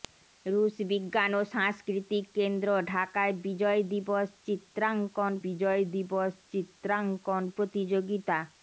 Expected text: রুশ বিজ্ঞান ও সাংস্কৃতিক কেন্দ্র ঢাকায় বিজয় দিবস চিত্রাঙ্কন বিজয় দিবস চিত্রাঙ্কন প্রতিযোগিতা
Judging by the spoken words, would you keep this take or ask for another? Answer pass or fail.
pass